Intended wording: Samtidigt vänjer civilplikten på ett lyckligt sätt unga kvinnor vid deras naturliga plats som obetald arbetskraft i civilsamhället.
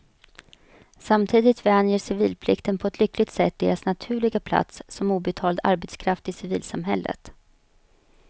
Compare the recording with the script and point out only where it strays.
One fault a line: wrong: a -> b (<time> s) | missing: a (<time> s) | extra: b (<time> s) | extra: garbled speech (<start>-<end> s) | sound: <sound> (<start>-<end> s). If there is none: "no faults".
missing: unga kvinnor vid (3.6 s)